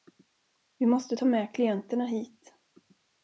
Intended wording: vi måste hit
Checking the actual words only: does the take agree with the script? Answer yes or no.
no